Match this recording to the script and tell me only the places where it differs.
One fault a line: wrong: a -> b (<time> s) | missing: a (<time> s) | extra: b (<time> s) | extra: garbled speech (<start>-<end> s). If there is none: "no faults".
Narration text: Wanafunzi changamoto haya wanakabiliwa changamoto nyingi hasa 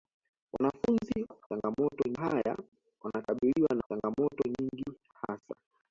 no faults